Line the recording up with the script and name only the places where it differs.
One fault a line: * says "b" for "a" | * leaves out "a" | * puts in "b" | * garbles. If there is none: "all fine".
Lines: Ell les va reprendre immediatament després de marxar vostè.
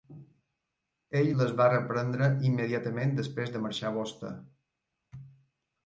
all fine